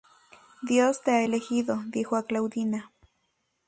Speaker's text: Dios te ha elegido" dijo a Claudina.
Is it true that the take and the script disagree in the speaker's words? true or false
false